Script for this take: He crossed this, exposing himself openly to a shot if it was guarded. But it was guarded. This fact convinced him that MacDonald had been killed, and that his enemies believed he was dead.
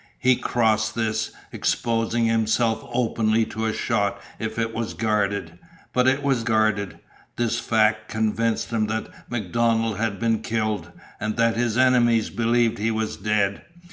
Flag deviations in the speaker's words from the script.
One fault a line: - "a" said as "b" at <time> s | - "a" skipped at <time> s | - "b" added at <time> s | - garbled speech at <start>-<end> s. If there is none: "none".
none